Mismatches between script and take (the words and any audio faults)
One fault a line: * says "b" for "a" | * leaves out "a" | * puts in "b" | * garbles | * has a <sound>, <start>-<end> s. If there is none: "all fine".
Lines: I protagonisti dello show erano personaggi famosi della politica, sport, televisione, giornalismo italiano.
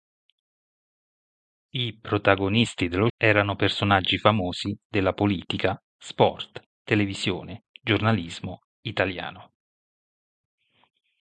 * leaves out "show"